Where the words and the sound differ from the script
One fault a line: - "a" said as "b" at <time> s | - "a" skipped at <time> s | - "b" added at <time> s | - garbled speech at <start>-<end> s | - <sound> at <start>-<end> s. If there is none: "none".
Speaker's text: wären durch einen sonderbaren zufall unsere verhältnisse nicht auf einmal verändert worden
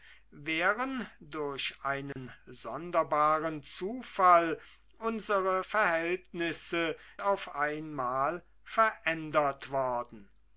- dropout at 2.1-2.2 s
- "nicht" skipped at 6.9 s